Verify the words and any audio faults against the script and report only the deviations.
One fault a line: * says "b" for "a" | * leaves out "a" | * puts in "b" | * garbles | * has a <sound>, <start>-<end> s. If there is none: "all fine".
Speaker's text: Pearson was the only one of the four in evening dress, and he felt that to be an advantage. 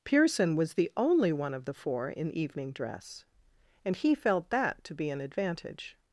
all fine